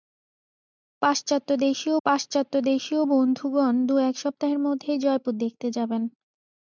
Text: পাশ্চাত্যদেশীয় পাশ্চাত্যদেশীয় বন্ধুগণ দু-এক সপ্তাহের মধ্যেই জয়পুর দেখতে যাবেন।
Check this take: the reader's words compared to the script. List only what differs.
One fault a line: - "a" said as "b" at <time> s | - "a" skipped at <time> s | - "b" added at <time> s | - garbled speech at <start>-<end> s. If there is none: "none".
none